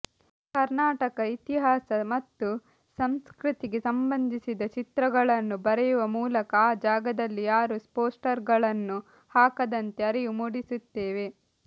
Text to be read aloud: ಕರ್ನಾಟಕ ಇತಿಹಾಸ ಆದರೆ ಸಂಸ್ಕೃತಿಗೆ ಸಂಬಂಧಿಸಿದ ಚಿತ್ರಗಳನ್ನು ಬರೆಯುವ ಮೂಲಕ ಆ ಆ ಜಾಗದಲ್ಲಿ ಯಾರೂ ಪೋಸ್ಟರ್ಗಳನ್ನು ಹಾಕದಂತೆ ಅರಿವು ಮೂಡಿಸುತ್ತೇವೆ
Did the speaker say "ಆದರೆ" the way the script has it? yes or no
no